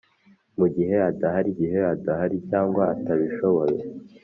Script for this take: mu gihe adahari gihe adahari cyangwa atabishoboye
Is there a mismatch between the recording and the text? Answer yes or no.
no